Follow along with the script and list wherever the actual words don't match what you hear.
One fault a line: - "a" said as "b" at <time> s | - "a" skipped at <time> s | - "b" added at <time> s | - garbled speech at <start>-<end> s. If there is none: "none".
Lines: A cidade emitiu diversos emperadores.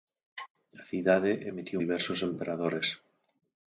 none